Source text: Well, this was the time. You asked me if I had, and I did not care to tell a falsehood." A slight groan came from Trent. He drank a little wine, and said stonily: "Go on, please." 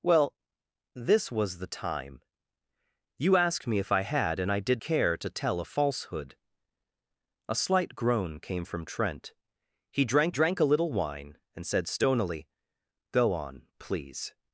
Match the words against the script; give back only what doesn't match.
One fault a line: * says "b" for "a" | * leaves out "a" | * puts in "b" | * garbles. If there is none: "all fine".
* leaves out "not"
* puts in "drank"